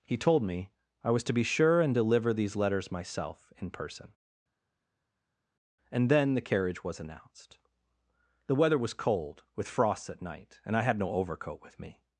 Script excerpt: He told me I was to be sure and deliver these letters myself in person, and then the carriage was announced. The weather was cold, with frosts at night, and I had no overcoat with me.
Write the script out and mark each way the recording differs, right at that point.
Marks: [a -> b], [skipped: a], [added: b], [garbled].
He told me I was to be sure and deliver these letters myself in person, and then the carriage was announced. The weather was cold, with frosts at night, and I had no overcoat with me.